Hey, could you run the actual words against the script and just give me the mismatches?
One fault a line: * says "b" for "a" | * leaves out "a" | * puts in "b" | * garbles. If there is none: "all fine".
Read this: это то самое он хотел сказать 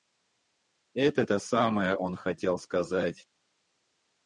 all fine